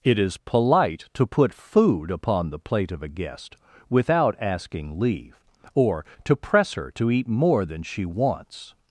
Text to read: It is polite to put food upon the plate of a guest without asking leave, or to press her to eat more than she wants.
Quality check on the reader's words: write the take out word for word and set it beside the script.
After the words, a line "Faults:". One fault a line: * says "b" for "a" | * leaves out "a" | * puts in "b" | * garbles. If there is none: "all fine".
It is polite to put food upon the plate of a guest without asking leave, or to press her to eat more than she wants.
Faults:
all fine